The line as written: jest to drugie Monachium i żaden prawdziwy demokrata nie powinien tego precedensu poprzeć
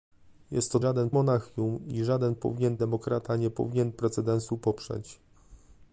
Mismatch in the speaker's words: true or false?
true